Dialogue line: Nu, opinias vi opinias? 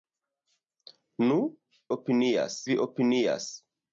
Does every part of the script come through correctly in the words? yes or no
yes